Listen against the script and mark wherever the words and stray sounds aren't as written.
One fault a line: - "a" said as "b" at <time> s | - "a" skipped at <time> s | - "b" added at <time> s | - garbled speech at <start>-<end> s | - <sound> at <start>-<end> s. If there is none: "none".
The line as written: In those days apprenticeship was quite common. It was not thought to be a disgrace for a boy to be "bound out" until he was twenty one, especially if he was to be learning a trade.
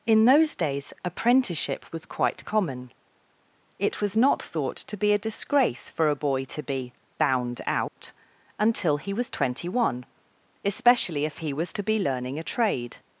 - dropout at 7.9-8.0 s